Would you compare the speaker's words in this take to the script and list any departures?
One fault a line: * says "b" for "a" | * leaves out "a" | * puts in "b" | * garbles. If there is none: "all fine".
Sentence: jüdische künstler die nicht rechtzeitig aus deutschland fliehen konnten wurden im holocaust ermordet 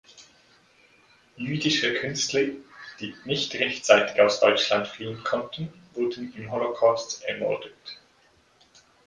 all fine